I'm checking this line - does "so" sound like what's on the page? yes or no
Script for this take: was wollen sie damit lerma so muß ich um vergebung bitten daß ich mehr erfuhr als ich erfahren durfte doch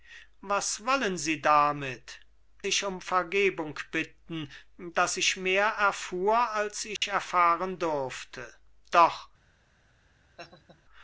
no